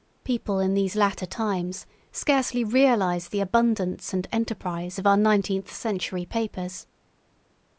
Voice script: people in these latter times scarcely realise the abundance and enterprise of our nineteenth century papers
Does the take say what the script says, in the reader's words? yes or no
yes